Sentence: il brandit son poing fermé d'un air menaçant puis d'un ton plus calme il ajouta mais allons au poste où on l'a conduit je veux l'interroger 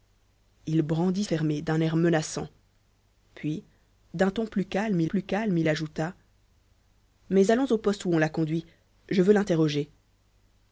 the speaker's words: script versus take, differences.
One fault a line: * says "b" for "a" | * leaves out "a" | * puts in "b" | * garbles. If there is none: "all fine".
* leaves out "son poing"
* puts in "plus calme il"